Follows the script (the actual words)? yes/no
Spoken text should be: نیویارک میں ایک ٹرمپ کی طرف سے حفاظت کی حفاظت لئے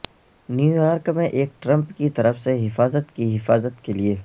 no